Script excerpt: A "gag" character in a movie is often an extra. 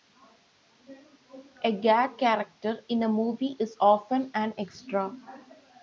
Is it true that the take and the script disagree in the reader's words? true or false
false